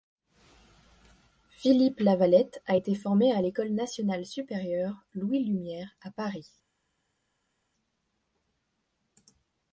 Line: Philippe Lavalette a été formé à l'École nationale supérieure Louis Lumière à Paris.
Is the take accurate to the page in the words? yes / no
yes